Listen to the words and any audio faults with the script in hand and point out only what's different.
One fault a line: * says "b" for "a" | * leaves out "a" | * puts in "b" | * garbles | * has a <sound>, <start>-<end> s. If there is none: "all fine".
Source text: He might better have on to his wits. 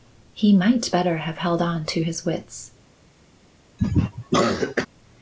* puts in "held"
* has a cough, 3.8-4.9 s